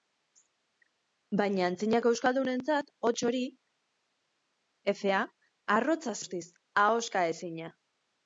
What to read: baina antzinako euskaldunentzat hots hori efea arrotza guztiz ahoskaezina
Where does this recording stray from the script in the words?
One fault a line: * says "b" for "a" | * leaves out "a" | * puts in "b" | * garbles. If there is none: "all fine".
all fine